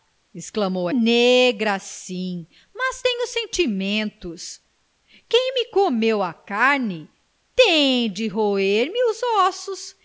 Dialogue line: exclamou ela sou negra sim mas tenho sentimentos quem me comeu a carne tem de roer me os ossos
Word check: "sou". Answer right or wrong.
wrong